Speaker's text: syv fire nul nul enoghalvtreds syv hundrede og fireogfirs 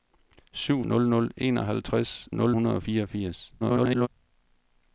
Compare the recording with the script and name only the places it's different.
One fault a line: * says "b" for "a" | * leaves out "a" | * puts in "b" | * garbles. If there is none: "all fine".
* leaves out "fire"
* says "nul" for "syv"
* garbles